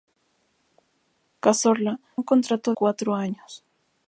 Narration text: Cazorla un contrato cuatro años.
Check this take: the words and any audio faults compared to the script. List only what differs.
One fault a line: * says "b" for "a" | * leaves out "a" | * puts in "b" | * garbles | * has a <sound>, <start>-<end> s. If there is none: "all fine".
all fine